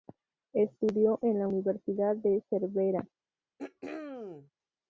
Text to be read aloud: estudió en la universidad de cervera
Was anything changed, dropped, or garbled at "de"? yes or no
no